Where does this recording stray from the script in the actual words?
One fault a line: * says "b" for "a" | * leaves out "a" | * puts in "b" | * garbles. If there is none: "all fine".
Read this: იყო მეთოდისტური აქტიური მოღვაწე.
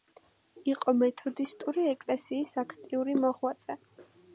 * puts in "ეკლესიის"